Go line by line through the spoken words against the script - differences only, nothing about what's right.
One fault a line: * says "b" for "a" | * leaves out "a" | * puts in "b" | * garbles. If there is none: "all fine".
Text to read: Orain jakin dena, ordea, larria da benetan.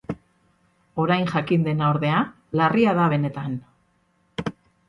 all fine